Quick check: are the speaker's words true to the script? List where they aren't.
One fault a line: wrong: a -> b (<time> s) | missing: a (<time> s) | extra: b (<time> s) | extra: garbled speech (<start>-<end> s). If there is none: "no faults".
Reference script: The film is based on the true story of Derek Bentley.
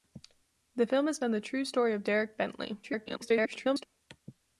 missing: based (1.2 s)
extra: garbled speech (2.8-3.9 s)